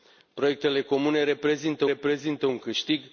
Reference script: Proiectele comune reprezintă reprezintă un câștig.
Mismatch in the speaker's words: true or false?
false